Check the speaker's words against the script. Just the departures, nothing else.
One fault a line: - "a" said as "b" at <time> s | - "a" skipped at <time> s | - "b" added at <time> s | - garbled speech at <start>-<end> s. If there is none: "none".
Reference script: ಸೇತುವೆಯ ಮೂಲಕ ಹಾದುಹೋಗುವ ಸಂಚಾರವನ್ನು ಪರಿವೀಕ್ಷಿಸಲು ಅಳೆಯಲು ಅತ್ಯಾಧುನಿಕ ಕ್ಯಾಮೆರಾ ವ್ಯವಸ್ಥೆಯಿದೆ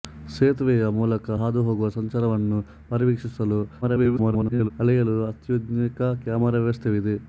- garbled speech at 3.8-4.7 s